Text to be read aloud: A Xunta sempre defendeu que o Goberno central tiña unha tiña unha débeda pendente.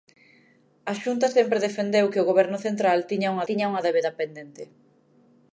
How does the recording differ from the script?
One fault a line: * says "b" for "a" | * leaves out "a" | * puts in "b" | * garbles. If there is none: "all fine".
all fine